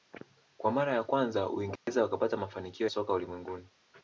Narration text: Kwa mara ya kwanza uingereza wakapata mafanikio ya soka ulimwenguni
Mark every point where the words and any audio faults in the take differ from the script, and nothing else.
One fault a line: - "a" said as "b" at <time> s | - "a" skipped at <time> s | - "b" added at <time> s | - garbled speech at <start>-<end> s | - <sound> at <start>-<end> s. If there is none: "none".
- dropout at 1.8-1.9 s
- "ya" skipped at 2.9 s